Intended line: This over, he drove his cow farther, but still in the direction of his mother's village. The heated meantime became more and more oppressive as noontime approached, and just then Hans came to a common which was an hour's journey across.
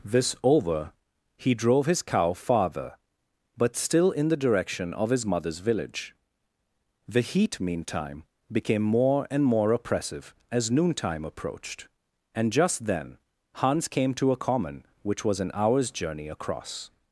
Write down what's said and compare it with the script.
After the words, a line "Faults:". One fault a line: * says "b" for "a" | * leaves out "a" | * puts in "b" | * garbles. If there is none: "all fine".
This over, he drove his cow farther, but still in the direction of his mother's village. The heat meantime became more and more oppressive as noontime approached, and just then Hans came to a common which was an hour's journey across.
Faults:
* says "heat" for "heated"